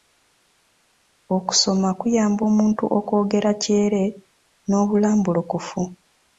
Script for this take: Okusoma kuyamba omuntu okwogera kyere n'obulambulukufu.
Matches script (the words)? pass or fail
pass